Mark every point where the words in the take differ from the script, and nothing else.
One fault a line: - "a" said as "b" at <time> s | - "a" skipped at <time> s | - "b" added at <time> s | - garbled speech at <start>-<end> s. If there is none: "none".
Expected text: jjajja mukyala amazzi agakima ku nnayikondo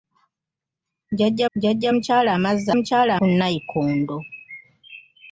- "jjajja" added at 1.5 s
- "agakima" said as "mukyala" at 2.8 s